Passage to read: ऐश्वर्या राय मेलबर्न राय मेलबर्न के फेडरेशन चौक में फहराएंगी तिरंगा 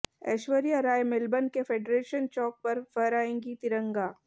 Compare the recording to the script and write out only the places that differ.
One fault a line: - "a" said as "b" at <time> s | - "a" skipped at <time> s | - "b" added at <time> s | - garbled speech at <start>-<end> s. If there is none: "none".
- "राय मेलबर्न" skipped at 1.5 s
- "में" said as "पर" at 2.6 s